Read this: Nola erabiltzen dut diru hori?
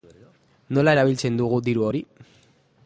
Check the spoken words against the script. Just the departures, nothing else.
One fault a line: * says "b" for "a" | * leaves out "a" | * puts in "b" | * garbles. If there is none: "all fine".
* says "dugu" for "dut"